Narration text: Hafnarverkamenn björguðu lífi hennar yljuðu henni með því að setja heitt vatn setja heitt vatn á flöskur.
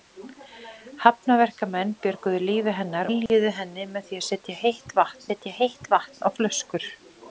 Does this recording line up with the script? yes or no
yes